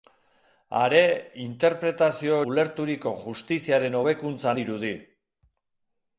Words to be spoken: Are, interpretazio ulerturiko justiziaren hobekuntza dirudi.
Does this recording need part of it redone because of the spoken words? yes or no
no